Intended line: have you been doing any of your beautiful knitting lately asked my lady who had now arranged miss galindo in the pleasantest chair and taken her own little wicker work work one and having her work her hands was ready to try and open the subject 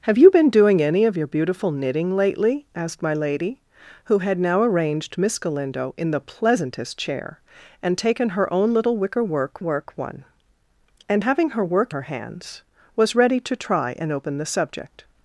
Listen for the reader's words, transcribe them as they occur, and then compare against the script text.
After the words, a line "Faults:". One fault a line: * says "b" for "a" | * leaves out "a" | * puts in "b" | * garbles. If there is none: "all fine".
have you been doing any of your beautiful knitting lately asked my lady who had now arranged miss galindo in the pleasantest chair and taken her own little wicker work work one and having her work her hands was ready to try and open the subject
Faults:
all fine